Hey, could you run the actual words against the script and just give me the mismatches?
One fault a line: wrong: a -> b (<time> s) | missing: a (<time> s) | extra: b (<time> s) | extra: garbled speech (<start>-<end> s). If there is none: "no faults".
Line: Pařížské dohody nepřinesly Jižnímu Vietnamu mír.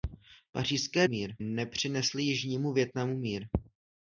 wrong: dohody -> mír (1.0 s)